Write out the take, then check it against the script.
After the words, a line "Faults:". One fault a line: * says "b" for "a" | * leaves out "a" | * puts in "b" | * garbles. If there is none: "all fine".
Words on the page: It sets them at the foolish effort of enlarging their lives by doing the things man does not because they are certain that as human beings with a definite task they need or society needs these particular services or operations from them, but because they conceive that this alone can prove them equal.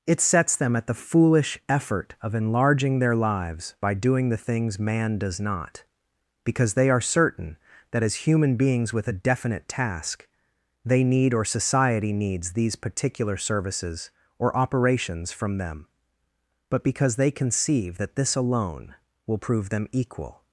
It sets them at the foolish effort of enlarging their lives by doing the things man does not because they are certain that as human beings with a definite task they need or society needs these particular services or operations from them, but because they conceive that this alone will prove them equal.
Faults:
* says "will" for "can"